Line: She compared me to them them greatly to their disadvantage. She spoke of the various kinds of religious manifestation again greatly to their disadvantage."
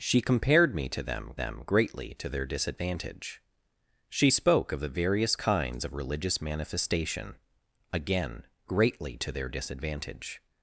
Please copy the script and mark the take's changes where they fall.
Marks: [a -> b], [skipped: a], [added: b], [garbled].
She compared me to them them greatly to their disadvantage. She spoke of the various kinds of religious manifestation again greatly to their disadvantage."